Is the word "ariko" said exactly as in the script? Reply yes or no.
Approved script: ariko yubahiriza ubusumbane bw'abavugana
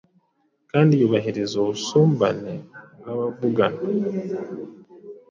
no